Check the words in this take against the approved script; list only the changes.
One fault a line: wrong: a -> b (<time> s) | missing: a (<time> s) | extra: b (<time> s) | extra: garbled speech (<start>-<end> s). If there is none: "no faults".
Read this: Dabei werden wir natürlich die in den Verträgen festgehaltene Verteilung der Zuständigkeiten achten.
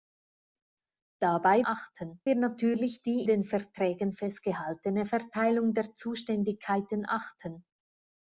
wrong: werden -> achten (1.6 s)
missing: in (3.3 s)